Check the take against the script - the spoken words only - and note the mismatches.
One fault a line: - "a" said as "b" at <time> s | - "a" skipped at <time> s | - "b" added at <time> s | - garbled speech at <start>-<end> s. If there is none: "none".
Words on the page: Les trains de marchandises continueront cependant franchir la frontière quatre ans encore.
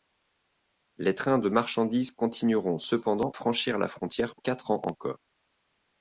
none